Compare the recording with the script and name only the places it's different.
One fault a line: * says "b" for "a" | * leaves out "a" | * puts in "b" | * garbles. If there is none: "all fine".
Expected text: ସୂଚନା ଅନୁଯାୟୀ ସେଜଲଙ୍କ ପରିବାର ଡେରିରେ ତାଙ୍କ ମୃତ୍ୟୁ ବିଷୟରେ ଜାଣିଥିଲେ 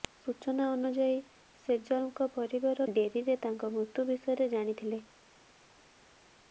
all fine